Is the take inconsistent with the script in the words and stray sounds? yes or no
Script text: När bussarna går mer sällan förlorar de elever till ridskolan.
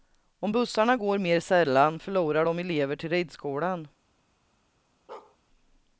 yes